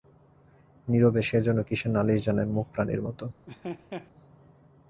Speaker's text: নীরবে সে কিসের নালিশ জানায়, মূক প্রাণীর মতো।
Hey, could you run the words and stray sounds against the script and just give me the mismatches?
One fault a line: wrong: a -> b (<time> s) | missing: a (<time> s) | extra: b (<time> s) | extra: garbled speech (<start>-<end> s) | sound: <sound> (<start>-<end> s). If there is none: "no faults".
extra: যেন (1.4 s)
sound: laugh (3.5-4.1 s)